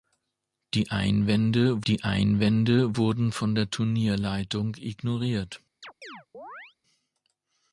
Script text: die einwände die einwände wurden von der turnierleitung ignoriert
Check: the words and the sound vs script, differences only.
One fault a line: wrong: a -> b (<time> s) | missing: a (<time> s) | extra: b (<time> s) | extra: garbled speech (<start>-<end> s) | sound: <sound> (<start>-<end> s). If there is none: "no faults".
sound: chirp (5.8-6.8 s)